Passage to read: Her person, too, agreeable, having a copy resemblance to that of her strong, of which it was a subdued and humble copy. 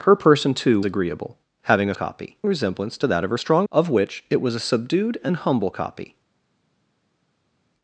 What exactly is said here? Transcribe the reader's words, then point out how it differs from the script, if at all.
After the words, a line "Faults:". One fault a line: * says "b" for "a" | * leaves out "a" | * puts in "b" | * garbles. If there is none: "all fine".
Her person, too, agreeable, having a copy resemblance to that of her strong, of which it was a subdued and humble copy.
Faults:
all fine